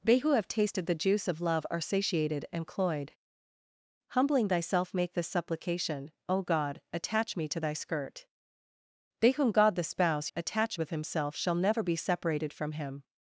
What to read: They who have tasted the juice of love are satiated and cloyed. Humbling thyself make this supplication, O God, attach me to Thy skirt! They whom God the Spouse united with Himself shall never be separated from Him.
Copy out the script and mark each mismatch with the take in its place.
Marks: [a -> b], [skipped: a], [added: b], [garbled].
They who have tasted the juice of love are satiated and cloyed. Humbling thyself make this supplication, O God, attach me to Thy skirt! They whom God the Spouse [united -> attach] with Himself shall never be separated from Him.